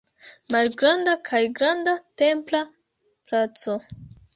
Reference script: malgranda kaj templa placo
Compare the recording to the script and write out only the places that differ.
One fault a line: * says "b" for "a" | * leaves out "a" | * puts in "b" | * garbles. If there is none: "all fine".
* puts in "granda"